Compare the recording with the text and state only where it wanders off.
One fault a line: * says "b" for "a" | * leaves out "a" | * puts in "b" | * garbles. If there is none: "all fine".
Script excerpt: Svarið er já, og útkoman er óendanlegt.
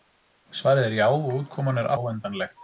all fine